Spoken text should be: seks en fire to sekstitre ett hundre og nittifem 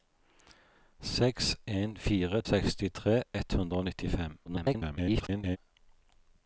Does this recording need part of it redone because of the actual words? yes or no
yes